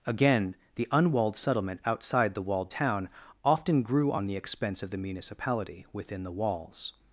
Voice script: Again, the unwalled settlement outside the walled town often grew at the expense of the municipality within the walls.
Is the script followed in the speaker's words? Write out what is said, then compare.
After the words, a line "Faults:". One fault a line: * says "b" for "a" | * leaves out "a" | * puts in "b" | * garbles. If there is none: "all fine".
Again, the unwalled settlement outside the walled town often grew on the expense of the municipality within the walls.
Faults:
* says "on" for "at"